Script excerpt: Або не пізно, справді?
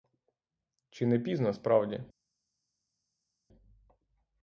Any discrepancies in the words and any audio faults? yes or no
yes